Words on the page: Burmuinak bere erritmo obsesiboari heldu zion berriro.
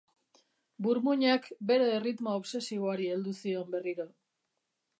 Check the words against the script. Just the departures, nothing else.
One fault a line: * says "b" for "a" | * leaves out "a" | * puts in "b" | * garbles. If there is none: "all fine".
all fine